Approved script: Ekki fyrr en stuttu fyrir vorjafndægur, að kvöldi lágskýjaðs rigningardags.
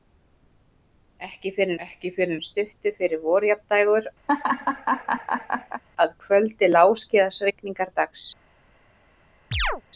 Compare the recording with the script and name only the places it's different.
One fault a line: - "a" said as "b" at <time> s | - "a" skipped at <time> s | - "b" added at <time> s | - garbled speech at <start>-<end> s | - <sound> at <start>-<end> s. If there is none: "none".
- "ekki fyrr" added at 1.9 s
- laugh at 4.3-5.8 s
- chirp at 9.5-9.8 s